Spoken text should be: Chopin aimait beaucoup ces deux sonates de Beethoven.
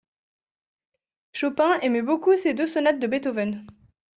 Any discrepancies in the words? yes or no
no